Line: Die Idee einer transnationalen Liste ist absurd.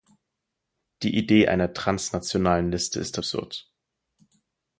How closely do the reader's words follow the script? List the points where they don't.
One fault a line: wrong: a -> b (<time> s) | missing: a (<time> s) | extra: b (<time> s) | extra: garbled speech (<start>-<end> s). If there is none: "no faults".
no faults